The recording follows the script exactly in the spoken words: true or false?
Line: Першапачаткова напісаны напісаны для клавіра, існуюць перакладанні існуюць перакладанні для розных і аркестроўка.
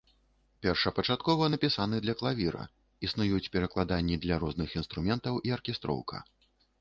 false